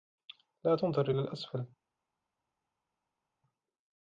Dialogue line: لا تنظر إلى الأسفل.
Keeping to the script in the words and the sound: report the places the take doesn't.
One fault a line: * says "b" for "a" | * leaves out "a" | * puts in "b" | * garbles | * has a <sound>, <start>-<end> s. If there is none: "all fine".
all fine